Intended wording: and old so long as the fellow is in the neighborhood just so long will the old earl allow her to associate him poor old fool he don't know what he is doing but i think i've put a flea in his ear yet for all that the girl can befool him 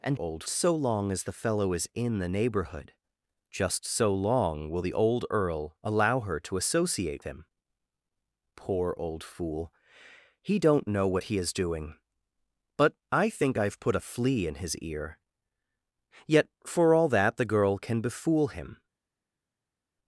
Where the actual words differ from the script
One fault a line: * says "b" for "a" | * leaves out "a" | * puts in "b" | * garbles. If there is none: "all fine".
all fine